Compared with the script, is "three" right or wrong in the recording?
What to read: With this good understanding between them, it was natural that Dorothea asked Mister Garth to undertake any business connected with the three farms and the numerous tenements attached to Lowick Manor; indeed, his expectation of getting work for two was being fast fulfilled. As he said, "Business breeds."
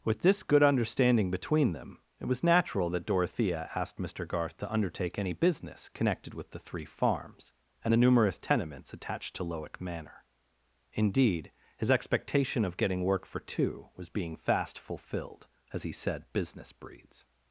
right